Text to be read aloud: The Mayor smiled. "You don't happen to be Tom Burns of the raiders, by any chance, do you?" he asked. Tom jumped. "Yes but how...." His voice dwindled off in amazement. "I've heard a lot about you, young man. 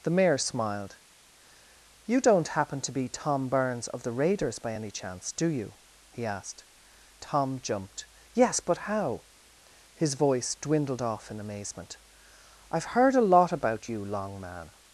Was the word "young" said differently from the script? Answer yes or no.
yes